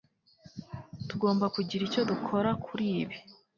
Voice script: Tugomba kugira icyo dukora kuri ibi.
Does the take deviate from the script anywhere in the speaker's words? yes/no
no